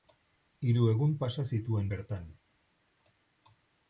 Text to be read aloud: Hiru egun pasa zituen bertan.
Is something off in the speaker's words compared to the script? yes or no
no